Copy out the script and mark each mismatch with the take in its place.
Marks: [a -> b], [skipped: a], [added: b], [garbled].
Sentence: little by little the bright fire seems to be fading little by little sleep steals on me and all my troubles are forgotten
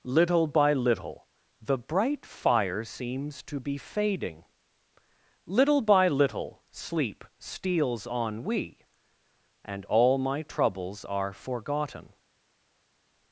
little by little the bright fire seems to be fading little by little sleep steals on [me -> we] and all my troubles are forgotten